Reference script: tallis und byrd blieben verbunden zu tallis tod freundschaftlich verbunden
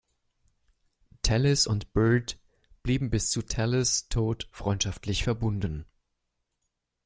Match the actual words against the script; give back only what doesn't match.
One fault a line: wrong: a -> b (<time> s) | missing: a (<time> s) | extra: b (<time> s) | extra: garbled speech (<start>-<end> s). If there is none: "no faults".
wrong: verbunden -> bis (3.1 s)